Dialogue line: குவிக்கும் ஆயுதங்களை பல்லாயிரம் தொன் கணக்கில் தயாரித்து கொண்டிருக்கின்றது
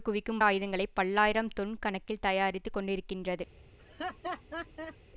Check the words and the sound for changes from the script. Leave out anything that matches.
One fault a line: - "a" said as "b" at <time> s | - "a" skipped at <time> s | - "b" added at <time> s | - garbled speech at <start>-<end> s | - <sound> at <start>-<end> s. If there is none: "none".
- laugh at 3.8-5.0 s